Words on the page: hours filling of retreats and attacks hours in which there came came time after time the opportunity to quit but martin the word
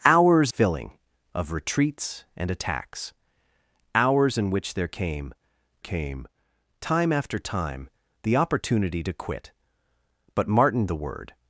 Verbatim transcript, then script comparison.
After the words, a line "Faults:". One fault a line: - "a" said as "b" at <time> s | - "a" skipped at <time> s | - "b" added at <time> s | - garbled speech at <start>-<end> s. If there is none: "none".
hours filling of retreats and attacks hours in which there came came time after time the opportunity to quit but martin the word
Faults:
none